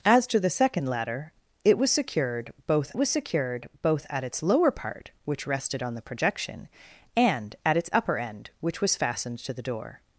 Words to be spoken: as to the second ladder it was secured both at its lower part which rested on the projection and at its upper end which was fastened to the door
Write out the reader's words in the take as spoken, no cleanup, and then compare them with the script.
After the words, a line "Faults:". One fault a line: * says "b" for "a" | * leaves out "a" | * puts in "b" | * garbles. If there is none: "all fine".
as to the second ladder it was secured both was secured both at its lower part which rested on the projection and at its upper end which was fastened to the door
Faults:
* puts in "was secured both"